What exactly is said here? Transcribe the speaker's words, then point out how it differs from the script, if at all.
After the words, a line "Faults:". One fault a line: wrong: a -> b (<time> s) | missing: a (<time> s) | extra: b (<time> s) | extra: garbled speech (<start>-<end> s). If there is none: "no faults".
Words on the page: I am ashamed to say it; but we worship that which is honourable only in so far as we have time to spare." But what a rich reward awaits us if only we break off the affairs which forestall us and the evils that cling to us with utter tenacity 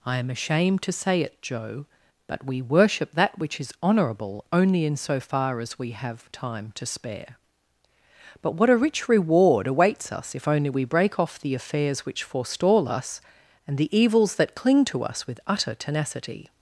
I am ashamed to say it; joe but we worship that which is honourable only in so far as we have time to spare." But what a rich reward awaits us if only we break off the affairs which forestall us and the evils that cling to us with utter tenacity
Faults:
extra: joe (1.4 s)